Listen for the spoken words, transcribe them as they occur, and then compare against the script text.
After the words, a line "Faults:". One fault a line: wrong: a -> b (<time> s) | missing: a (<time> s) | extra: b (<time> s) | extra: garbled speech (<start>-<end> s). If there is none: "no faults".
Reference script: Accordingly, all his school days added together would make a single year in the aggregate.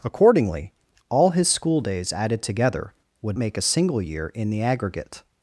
Accordingly, all his school days added together would make a single year in the aggregate.
Faults:
no faults